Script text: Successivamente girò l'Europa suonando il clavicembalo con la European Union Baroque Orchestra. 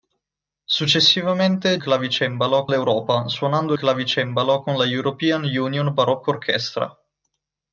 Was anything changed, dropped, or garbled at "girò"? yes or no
yes